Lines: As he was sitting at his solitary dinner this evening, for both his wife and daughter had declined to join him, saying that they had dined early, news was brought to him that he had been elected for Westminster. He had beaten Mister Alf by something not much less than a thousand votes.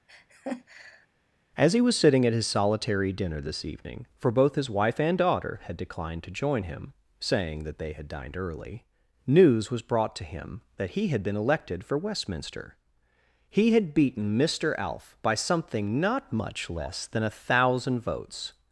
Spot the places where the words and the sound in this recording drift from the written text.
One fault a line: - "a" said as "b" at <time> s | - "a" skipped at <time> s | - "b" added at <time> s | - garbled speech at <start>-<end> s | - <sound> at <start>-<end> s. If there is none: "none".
- laugh at 0.1-1.1 s